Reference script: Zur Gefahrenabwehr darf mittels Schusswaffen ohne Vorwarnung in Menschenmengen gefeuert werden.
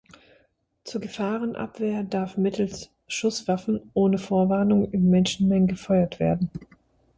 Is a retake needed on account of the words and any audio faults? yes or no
no